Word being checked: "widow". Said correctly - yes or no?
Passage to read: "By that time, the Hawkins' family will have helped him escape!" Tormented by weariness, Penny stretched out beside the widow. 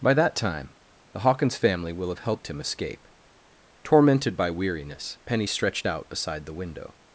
no